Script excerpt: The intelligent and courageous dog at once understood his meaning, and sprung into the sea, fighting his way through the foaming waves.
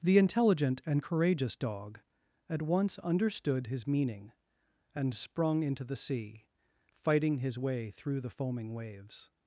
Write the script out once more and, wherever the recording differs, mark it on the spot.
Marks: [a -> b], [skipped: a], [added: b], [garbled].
The intelligent and courageous dog at once understood his meaning, and sprung into the sea, fighting his way through the foaming waves.